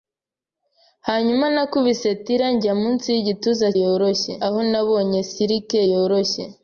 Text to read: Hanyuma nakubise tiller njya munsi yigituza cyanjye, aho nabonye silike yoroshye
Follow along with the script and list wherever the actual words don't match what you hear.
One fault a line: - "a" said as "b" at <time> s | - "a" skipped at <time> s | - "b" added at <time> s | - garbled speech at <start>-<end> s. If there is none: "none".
- "cyanjye" said as "yoroshye" at 3.8 s